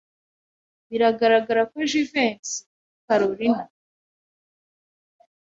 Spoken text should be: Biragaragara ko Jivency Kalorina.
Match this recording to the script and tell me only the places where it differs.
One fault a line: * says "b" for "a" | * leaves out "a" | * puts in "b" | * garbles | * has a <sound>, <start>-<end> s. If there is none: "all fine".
all fine